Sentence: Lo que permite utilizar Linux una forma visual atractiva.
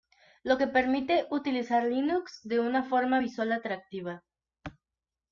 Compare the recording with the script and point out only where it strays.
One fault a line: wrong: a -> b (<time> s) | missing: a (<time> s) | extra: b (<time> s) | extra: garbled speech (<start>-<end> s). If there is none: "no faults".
extra: de (2.4 s)